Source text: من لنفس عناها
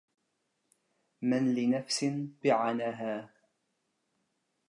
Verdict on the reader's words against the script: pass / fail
pass